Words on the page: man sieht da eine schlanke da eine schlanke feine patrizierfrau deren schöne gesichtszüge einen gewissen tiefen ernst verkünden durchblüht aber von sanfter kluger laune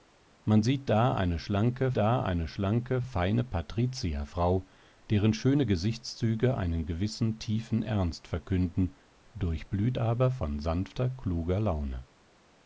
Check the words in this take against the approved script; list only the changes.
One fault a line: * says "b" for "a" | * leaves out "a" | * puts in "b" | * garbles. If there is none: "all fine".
all fine